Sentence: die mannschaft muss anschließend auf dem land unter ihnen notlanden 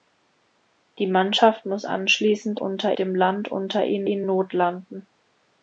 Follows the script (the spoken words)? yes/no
no